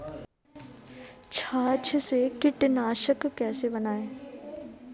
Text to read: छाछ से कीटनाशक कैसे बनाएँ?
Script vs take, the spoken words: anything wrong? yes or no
no